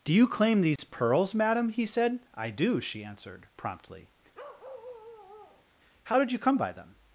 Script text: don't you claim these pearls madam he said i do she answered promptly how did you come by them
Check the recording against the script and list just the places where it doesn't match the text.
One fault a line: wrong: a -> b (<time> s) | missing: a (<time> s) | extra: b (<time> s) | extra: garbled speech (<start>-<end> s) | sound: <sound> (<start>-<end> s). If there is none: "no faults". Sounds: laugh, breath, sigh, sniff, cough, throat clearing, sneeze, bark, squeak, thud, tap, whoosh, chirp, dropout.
wrong: don't -> do (0.0 s)
sound: dropout (0.8-0.8 s)
sound: bark (4.3-5.7 s)